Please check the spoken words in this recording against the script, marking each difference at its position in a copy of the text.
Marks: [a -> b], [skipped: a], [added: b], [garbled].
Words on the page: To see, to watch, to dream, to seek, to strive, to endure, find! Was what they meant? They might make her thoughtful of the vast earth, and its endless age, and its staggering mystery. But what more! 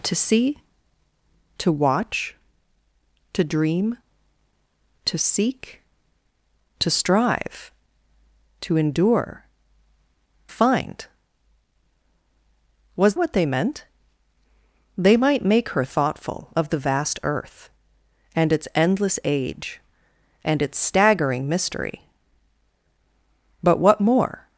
To see, to watch, to dream, to seek, to strive, to endure, find! Was what they meant? They might make her thoughtful of the vast earth, and its endless age, and its staggering mystery. But what more!